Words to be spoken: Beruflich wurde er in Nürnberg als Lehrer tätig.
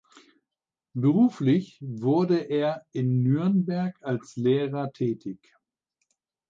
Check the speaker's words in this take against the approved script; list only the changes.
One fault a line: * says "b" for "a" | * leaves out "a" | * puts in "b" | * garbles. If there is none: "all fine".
all fine